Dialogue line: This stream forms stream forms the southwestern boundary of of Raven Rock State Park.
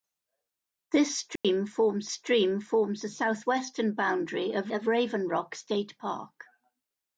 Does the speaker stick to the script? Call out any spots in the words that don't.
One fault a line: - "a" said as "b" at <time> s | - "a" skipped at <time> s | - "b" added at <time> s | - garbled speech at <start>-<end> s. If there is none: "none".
none